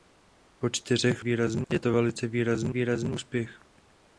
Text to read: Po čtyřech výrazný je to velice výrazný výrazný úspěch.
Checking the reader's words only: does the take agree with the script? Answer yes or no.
yes